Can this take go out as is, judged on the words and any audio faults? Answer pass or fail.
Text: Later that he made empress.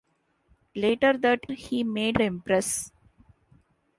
pass